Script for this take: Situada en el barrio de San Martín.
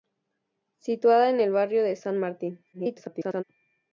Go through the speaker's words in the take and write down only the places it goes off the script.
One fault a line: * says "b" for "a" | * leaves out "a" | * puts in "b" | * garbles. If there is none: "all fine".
* garbles